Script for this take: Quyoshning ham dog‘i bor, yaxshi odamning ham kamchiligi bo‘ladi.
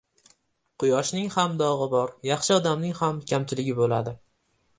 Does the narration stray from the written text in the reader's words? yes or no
no